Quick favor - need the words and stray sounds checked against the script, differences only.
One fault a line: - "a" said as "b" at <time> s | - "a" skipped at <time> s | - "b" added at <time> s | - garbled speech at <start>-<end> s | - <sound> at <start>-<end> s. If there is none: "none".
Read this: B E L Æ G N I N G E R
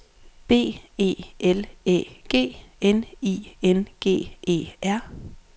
none